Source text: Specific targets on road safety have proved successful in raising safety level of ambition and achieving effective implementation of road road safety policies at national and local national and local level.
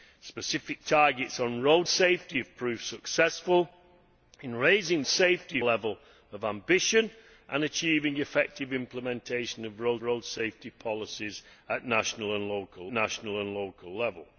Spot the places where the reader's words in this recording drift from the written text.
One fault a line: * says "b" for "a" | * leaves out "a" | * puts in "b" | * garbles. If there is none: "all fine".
all fine